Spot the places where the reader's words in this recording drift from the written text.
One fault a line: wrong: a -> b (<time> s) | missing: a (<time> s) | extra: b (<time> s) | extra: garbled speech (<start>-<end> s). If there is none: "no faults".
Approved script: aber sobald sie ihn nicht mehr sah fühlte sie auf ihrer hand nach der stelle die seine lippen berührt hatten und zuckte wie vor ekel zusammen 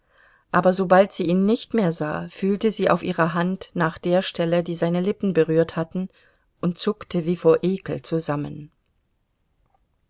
no faults